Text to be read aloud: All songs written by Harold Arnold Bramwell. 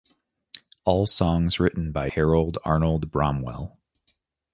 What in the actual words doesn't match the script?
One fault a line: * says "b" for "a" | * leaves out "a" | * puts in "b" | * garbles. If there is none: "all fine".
all fine